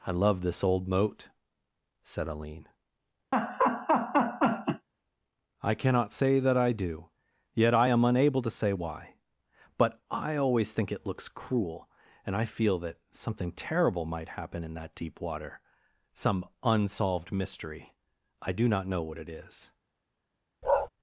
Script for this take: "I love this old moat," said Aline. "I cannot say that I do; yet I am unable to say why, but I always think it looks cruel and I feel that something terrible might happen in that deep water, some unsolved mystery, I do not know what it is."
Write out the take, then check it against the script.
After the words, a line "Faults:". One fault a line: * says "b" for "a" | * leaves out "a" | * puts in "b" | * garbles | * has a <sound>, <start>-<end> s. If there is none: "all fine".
"I love this old moat," said Aline. "I cannot say that I do; yet I am unable to say why, but I always think it looks cruel and I feel that something terrible might happen in that deep water, some unsolved mystery, I do not know what it is."
Faults:
* has a laugh, 3.3-4.9 s
* has a bark, 20.6-20.9 s